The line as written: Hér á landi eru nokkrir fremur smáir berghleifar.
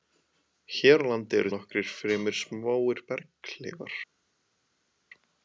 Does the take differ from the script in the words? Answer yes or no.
no